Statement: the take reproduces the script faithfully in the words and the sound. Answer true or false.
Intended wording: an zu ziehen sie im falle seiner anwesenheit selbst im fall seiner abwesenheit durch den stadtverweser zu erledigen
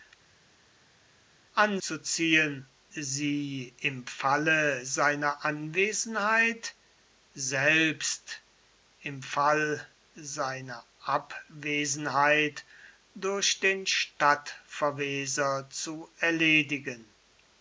true